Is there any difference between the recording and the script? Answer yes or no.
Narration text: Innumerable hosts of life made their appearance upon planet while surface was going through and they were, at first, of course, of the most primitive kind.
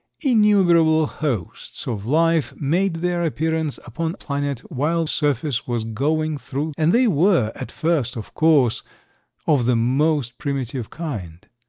no